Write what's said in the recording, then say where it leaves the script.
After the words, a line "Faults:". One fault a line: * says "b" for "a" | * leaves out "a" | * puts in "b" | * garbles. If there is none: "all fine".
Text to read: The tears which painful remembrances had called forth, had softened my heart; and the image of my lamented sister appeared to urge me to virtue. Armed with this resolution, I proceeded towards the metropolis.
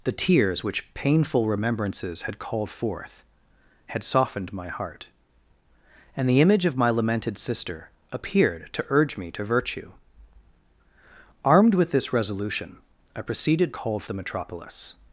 The tears which painful remembrances had called forth, had softened my heart; and the image of my lamented sister appeared to urge me to virtue. Armed with this resolution, I proceeded called the metropolis.
Faults:
* says "called" for "towards"